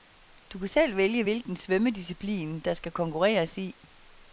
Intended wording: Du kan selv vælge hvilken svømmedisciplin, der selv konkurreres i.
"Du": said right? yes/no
yes